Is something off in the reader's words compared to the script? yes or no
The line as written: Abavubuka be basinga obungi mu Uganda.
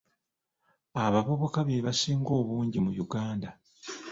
no